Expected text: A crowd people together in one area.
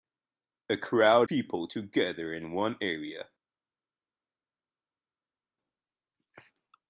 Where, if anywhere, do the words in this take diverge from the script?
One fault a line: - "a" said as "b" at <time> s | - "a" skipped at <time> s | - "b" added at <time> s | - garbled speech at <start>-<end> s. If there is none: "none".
none